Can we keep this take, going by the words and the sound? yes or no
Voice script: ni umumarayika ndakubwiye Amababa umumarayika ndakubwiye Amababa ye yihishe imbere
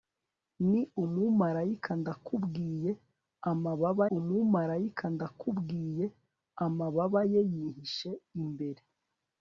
yes